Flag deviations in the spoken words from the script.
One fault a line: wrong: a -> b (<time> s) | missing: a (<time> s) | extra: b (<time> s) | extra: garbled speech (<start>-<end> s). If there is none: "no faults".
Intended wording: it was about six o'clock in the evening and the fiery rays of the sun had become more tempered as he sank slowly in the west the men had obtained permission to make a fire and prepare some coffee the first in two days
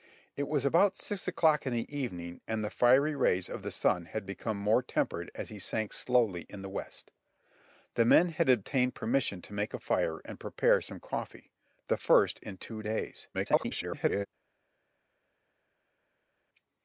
extra: garbled speech (13.3-14.3 s)